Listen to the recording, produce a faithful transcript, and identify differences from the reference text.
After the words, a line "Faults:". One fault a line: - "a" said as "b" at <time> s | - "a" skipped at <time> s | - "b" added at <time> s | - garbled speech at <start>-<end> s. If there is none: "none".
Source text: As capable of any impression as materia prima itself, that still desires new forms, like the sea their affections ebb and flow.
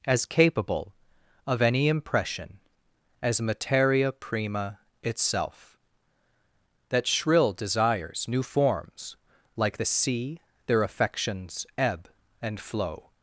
As capable of any impression as materia prima itself, that shrill desires new forms, like the sea their affections ebb and flow.
Faults:
- "still" said as "shrill" at 7.1 s